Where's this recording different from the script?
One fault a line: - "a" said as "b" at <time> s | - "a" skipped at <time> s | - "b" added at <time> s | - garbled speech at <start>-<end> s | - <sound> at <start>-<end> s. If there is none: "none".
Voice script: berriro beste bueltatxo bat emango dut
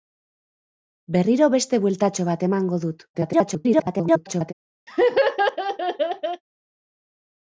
- garbled speech at 3.1-4.5 s
- laugh at 4.9-6.4 s